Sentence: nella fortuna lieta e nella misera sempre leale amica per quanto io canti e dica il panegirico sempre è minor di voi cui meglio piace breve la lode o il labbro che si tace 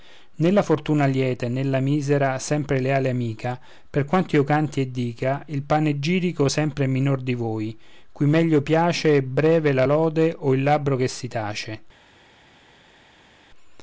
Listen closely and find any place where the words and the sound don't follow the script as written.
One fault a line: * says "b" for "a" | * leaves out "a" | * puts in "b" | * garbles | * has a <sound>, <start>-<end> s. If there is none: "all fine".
all fine